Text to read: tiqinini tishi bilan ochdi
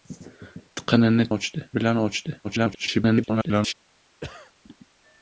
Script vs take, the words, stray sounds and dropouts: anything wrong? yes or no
yes